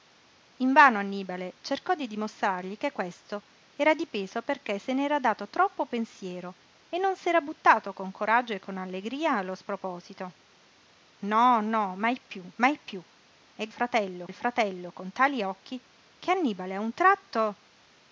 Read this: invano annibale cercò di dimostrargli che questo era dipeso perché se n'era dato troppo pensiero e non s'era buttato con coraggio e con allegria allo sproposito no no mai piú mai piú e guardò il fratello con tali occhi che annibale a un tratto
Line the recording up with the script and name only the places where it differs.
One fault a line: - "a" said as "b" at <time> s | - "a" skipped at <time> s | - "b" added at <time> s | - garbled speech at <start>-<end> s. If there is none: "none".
- "guardò" said as "fratello" at 13.7 s